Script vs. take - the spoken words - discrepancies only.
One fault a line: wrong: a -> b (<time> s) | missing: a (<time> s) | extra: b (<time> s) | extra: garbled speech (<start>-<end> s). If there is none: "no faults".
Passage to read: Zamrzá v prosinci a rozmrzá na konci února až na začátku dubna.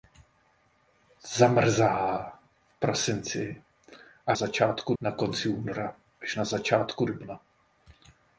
wrong: rozmrzá -> začátku (4.3 s)